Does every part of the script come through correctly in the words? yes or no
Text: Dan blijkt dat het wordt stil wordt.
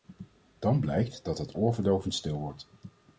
no